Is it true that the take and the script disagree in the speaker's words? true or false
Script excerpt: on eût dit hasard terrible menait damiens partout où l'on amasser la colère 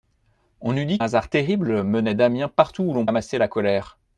false